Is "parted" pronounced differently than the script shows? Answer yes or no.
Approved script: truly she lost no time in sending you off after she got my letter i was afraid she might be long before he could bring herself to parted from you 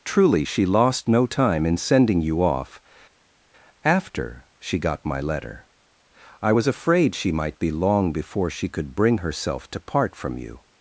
yes